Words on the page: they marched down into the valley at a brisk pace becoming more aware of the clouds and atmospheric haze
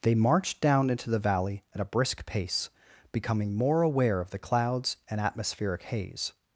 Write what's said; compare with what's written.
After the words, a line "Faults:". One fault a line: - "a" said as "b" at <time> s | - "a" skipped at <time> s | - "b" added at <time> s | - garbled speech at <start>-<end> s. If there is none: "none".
they marched down into the valley at a brisk pace becoming more aware of the clouds and atmospheric haze
Faults:
none